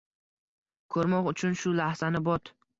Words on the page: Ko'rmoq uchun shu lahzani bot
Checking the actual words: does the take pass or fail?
pass